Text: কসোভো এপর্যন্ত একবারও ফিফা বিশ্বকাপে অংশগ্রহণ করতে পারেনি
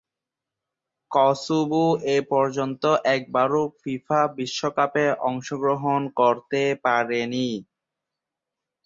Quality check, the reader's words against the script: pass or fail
pass